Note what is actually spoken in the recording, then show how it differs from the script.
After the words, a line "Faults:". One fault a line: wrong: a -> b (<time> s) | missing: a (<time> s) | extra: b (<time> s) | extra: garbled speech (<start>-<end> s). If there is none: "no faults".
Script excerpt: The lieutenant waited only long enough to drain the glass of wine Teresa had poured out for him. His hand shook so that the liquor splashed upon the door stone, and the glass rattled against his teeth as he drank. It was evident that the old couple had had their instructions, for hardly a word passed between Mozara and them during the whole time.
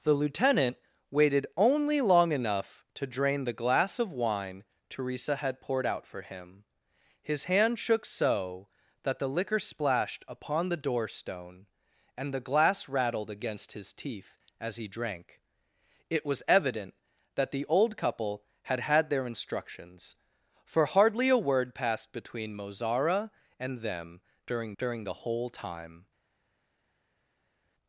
The lieutenant waited only long enough to drain the glass of wine Teresa had poured out for him. His hand shook so that the liquor splashed upon the door stone, and the glass rattled against his teeth as he drank. It was evident that the old couple had had their instructions, for hardly a word passed between Mozara and them during during the whole time.
Faults:
extra: during (24.8 s)